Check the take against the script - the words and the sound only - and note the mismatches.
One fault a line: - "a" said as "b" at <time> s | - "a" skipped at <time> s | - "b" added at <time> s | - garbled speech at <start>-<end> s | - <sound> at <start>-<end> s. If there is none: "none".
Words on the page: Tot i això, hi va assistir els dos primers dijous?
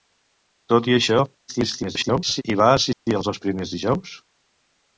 - garbled speech at 1.5-2.4 s
- dropout at 2.9-3.1 s